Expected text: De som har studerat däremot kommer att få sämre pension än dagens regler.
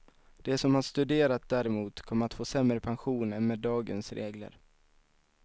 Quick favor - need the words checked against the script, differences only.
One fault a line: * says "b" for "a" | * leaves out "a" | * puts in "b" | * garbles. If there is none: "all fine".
* puts in "med"